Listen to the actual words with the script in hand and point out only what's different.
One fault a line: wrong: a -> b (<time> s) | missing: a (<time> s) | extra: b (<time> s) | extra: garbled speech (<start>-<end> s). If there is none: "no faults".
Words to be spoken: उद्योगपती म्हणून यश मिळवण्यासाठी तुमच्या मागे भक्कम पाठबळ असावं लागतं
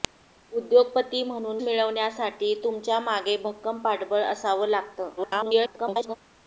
missing: यश (1.6 s)
extra: garbled speech (5.2-6.2 s)